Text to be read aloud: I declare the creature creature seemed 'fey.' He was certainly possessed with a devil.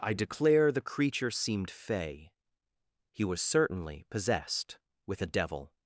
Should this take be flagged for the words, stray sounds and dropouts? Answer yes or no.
yes